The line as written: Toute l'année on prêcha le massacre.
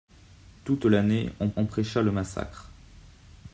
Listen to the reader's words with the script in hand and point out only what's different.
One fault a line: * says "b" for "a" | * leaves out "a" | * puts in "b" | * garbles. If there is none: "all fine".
* puts in "on"